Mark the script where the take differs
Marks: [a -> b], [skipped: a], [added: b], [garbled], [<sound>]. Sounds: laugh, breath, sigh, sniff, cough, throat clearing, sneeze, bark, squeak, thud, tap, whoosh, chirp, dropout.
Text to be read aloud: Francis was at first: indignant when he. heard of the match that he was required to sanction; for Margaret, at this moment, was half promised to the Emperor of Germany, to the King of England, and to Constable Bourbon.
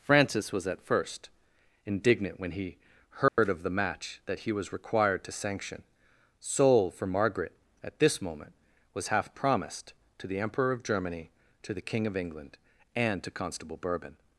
Francis was at first: indignant when he. heard [dropout] of the match that he was required to sanction; [added: soul] for Margaret, at this moment, was half promised to the Emperor of Germany, to the King of England, and to Constable Bourbon.